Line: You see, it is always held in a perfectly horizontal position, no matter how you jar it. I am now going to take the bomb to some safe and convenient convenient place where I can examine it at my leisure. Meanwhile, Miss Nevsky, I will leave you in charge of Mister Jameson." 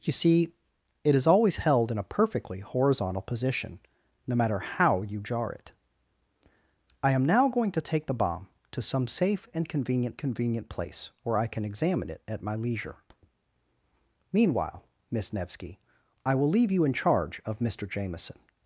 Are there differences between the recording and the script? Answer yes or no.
no